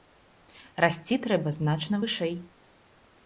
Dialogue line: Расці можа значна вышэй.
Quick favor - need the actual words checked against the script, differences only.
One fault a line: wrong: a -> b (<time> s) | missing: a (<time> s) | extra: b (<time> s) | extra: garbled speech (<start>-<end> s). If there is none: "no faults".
wrong: можа -> трэба (1.3 s)